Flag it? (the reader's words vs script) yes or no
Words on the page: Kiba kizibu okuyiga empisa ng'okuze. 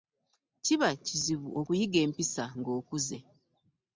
no